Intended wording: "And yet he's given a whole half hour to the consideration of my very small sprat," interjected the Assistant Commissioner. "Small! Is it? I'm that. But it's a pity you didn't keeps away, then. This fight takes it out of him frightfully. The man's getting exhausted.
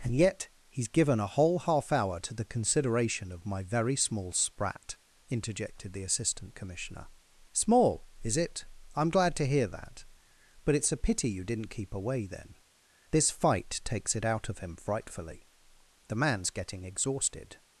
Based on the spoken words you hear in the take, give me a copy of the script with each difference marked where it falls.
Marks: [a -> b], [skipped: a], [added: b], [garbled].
"And yet he's given a whole half hour to the consideration of my very small sprat," interjected the Assistant Commissioner. "Small! Is it? I'm [added: glad to hear] that. But it's a pity you didn't [keeps -> keep] away, then. This fight takes it out of him frightfully. The man's getting exhausted.